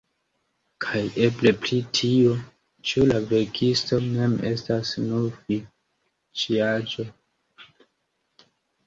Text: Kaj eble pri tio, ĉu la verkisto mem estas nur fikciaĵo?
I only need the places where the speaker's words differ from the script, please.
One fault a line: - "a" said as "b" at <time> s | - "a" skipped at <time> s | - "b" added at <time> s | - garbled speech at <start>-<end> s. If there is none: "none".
none